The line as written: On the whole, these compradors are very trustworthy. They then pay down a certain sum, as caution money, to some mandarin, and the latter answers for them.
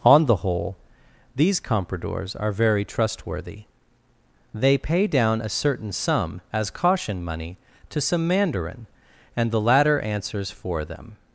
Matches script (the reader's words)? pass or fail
fail